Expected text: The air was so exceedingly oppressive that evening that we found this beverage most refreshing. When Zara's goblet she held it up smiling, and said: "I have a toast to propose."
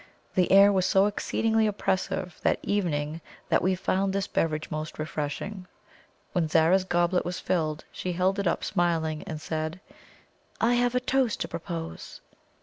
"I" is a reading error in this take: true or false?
false